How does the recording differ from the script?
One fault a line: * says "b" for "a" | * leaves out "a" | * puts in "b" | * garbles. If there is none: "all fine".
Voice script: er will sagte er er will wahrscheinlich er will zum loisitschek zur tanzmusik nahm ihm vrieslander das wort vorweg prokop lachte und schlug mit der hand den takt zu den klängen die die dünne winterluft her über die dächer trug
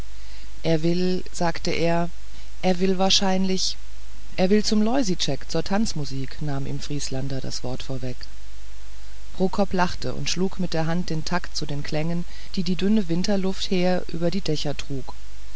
all fine